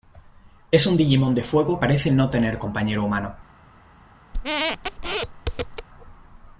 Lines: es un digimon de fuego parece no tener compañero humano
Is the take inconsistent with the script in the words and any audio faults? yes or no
yes